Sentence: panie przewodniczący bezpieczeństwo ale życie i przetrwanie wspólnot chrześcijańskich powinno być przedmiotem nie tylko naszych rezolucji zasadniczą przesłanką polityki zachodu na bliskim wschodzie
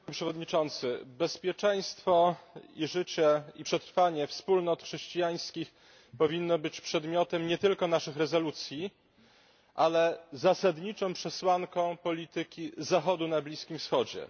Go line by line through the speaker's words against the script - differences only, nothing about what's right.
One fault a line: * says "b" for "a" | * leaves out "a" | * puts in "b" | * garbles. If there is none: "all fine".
* says "i" for "ale"
* puts in "ale"